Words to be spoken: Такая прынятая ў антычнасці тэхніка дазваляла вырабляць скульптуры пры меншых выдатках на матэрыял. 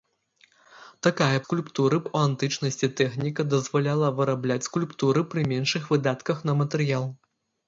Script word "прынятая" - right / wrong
wrong